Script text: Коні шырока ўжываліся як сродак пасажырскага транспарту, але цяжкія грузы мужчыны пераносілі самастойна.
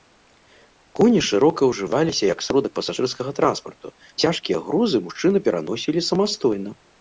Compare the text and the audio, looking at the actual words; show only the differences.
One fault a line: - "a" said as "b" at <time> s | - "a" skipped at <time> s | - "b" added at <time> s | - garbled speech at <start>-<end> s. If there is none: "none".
- "але" skipped at 3.9 s